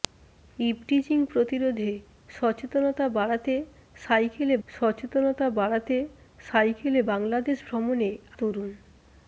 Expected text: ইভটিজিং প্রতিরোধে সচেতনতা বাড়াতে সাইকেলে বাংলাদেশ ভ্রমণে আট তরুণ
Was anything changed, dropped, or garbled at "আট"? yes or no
yes